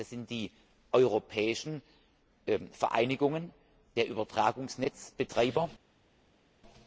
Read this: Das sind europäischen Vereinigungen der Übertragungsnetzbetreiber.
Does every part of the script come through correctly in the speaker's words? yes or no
no